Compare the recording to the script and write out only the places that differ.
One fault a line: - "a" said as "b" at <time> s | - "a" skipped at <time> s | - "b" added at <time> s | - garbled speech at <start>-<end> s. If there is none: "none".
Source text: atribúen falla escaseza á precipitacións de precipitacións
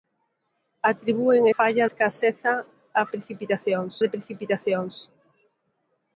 none